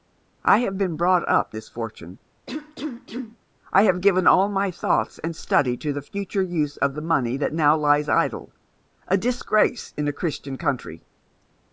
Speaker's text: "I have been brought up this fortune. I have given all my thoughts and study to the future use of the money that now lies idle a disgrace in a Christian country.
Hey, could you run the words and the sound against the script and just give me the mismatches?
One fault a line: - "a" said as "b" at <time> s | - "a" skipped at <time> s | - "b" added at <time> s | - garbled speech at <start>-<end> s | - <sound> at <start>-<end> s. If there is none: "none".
- cough at 2.5-3.4 s